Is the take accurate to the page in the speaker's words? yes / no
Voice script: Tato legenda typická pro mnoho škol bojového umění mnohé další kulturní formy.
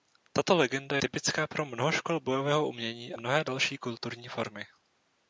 yes